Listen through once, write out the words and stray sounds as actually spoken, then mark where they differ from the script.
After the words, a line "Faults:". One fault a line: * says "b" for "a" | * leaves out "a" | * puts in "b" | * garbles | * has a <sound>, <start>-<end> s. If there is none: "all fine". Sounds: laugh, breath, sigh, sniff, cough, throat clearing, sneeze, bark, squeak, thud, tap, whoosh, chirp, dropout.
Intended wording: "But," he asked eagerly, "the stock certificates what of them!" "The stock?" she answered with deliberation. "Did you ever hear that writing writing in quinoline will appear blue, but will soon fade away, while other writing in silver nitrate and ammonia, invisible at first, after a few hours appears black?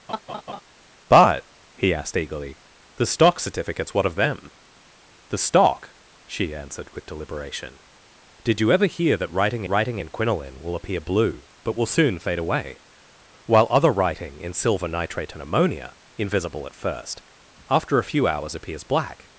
"But," he asked eagerly, "the stock certificates what of them!" "The stock?" she answered with deliberation. "Did you ever hear that writing writing in quinoline will appear blue, but will soon fade away, while other writing in silver nitrate and ammonia, invisible at first, after a few hours appears black?
Faults:
* has a laugh, 0.1-0.6 s